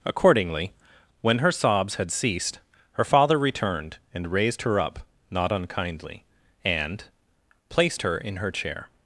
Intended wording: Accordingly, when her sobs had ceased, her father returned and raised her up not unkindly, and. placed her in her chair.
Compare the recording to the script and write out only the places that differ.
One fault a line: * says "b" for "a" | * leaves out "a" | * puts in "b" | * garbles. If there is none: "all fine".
all fine